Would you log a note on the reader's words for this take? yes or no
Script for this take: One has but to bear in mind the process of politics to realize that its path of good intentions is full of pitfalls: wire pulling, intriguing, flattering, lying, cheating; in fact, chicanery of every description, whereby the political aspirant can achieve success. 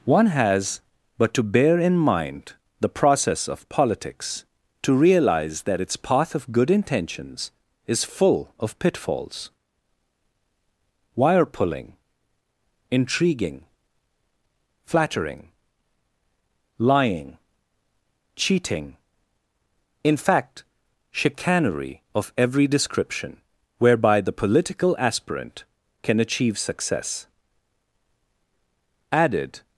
yes